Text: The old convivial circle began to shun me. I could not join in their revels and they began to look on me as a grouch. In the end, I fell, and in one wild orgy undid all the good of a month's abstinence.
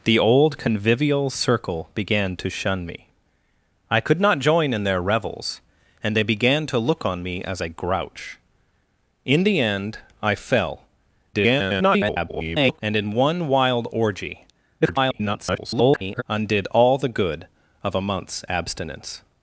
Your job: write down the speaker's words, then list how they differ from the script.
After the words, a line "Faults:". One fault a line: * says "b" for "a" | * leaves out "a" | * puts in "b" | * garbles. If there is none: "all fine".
The old convivial circle began to shun me. I could not join in their revels and they began to look on me as a grouch. In the end, I fell, [garbled] and in one wild orgy [garbled] undid all the good of a month's abstinence.
Faults:
* garbles
* garbles